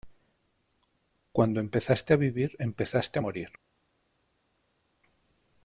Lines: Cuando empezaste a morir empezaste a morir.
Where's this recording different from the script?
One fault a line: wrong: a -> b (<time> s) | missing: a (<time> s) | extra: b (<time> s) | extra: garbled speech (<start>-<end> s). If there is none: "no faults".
wrong: morir -> vivir (2.2 s)